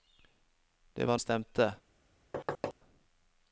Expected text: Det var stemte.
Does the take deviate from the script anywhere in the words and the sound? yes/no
yes